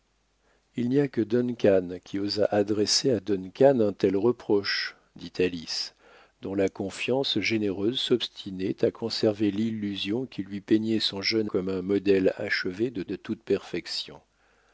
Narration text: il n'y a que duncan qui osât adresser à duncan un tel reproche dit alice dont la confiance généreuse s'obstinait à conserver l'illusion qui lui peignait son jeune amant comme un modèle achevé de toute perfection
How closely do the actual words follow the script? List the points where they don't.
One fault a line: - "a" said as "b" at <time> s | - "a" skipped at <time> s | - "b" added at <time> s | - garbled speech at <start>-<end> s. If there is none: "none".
- "amant" skipped at 11.5 s
- "de" added at 13.0 s